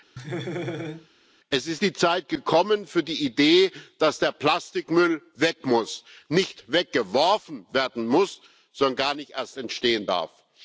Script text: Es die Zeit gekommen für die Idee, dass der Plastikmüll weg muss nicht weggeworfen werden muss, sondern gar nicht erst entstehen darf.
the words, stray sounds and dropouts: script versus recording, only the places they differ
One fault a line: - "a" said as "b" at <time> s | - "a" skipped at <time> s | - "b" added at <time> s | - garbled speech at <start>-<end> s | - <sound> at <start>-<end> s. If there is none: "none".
- laugh at 0.2-1.1 s
- "ist" added at 1.7 s